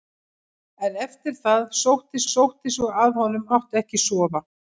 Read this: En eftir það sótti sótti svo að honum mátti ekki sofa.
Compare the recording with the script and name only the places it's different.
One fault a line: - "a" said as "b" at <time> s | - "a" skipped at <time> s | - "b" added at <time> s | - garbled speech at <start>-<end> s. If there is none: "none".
none